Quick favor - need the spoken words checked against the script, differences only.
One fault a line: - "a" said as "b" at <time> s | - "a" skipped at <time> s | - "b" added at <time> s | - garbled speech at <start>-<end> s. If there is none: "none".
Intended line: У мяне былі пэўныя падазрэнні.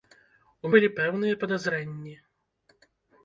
- "мяне" skipped at 0.7 s